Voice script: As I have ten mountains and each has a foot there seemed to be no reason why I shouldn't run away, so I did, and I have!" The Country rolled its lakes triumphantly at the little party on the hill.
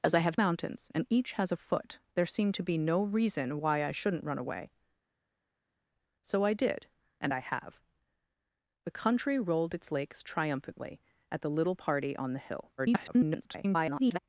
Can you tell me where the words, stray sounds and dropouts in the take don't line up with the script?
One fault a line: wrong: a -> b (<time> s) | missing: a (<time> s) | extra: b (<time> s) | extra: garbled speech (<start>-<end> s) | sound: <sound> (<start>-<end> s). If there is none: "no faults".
missing: ten (0.4 s)
extra: garbled speech (12.8-14.2 s)